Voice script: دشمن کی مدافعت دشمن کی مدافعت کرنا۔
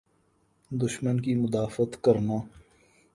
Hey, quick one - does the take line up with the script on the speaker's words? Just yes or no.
no